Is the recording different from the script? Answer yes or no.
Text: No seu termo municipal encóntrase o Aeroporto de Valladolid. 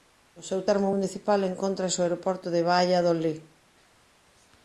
no